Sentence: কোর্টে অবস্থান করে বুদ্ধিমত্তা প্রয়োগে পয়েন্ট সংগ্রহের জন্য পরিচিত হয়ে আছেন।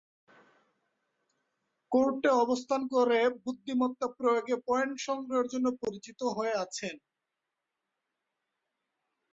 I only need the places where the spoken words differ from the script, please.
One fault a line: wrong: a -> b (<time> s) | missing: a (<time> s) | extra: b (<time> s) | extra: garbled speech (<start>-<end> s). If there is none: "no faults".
no faults